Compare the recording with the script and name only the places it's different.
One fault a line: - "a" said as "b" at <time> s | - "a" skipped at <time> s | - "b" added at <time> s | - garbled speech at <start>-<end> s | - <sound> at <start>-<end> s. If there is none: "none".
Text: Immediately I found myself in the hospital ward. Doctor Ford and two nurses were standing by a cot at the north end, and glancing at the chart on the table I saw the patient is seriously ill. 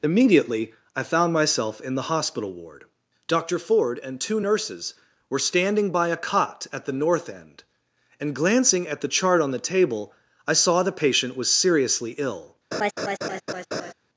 - "is" said as "was" at 11.4 s
- laugh at 12.7-13.9 s